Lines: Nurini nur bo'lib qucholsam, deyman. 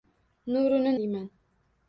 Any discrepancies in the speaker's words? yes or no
yes